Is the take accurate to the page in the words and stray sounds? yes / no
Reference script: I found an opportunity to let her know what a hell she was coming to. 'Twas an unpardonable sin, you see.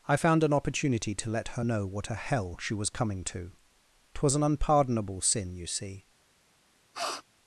no